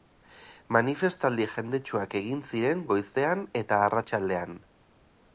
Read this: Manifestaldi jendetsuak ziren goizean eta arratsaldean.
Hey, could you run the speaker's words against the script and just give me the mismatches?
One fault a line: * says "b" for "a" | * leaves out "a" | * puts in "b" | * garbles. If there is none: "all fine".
* puts in "egin"